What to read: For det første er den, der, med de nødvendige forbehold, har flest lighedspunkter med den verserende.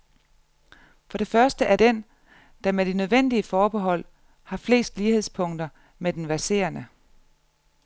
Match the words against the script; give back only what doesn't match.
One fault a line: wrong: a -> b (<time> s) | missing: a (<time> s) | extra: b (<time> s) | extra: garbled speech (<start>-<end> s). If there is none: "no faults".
no faults